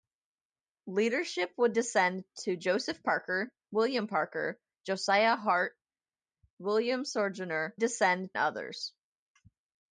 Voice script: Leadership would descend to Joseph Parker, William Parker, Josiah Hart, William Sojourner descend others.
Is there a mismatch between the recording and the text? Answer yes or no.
no